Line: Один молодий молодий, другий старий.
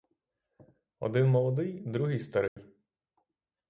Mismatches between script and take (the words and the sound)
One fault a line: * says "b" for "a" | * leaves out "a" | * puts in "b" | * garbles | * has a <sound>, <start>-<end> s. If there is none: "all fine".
* leaves out "молодий"
* has a dropout, 2.5-2.6 s